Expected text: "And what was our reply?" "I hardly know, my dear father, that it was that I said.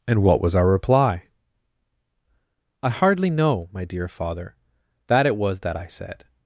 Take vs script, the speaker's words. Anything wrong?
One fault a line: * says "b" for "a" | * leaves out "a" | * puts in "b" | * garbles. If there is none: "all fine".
all fine